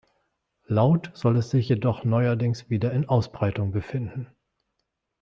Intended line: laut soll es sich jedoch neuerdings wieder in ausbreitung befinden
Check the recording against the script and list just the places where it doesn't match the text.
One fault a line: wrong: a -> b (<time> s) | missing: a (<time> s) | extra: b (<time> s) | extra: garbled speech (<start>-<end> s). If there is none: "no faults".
no faults